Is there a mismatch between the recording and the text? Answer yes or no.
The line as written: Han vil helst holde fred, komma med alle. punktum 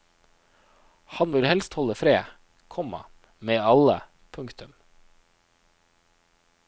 no